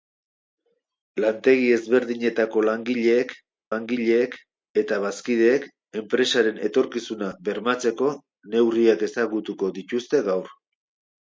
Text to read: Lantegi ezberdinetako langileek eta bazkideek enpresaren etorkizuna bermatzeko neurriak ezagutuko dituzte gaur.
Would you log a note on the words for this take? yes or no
yes